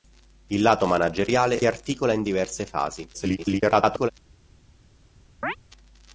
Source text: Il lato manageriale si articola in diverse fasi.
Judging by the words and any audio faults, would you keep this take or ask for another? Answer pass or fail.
fail